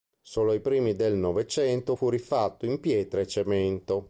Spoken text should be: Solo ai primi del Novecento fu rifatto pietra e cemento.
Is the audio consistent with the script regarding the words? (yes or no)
no